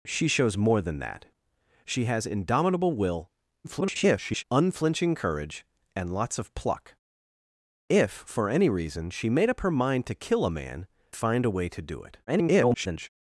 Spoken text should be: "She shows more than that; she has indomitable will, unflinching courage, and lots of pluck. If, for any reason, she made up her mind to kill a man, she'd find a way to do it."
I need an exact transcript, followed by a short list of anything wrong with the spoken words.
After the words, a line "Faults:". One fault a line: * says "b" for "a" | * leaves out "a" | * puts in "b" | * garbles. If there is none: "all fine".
"She shows more than that; she has indomitable will, [garbled] unflinching courage, and lots of pluck. If, for any reason, she made up her mind to kill a man, find a way to do it." [garbled]
Faults:
* garbles
* leaves out "she'd"
* garbles